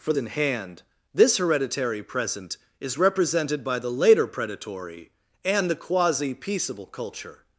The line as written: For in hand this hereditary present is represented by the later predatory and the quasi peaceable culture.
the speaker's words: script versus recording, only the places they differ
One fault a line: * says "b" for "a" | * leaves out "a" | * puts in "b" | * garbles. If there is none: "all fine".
all fine